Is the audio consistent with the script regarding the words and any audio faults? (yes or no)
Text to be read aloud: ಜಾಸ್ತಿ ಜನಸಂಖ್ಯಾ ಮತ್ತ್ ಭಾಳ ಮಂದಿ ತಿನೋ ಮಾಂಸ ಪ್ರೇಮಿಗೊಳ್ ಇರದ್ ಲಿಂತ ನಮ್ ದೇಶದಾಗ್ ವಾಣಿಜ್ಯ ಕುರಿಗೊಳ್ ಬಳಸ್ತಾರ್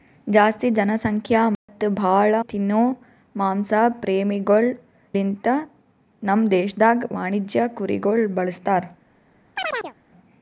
no